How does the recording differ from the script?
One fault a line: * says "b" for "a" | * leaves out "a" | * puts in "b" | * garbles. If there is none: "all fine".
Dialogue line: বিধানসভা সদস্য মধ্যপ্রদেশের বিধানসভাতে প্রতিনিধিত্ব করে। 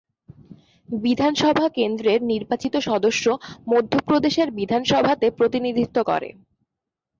* puts in "কেন্দ্রের নির্বাচিত"